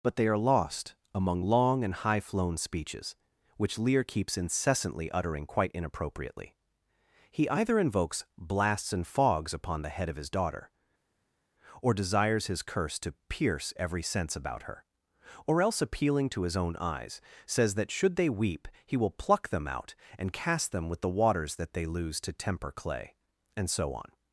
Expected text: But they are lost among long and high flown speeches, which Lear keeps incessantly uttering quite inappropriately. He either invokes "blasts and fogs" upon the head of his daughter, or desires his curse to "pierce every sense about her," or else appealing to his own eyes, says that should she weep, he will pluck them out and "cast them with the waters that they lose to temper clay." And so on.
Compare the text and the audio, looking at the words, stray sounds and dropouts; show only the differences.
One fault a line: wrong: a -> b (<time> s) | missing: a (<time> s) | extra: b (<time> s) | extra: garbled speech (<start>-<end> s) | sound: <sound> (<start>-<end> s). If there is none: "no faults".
wrong: she -> they (18.2 s)